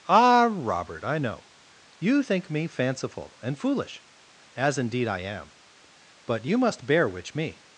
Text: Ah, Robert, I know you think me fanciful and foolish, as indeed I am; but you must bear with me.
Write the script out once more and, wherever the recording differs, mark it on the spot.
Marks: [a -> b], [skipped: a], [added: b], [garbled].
Ah, Robert, I know you think me fanciful and foolish, as indeed I am; but you must bear [with -> which] me.